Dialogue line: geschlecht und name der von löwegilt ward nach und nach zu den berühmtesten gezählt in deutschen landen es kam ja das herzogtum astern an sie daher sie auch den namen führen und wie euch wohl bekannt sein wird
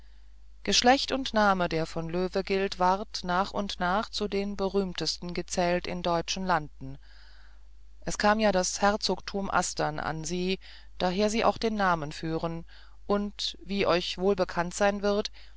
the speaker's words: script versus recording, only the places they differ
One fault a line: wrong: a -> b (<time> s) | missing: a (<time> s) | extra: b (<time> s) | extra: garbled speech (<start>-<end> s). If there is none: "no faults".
no faults